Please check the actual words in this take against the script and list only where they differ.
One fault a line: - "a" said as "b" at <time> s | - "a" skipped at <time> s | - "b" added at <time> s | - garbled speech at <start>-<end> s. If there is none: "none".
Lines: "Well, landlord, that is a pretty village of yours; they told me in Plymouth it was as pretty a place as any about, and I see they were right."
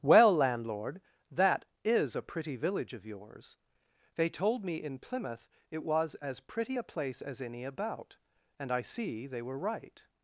none